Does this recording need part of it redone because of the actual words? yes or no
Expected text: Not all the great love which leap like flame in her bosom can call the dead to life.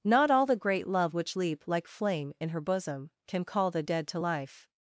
no